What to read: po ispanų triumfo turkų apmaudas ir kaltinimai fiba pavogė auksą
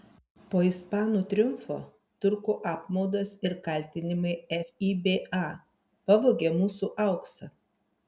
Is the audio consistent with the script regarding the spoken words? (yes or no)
no